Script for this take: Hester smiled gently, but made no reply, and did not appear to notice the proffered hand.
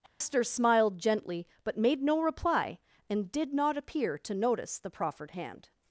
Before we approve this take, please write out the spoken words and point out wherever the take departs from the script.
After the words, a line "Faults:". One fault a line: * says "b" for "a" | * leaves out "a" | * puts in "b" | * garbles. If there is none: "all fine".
Hester smiled gently, but made no reply, and did not appear to notice the proffered hand.
Faults:
all fine